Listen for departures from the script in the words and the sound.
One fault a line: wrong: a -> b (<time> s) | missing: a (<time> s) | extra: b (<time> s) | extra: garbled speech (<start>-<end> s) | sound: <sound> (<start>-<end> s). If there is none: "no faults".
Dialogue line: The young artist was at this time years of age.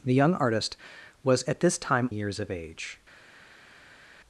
no faults